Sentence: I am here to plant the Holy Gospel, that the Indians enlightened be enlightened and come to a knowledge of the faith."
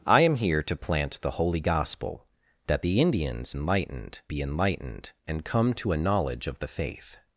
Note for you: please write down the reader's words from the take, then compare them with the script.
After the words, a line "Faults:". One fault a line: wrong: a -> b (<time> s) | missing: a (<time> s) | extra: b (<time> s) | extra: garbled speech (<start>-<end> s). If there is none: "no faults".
I am here to plant the Holy Gospel, that the Indians enlightened be enlightened and come to a knowledge of the faith."
Faults:
no faults